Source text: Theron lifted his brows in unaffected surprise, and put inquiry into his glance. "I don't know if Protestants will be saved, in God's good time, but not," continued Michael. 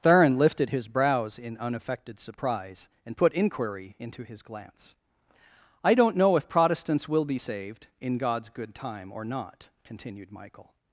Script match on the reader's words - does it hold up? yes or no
no